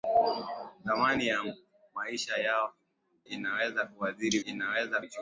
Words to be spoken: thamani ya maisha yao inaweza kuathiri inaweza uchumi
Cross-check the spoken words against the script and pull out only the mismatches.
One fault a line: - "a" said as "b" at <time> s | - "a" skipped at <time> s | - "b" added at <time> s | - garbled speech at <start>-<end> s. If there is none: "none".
none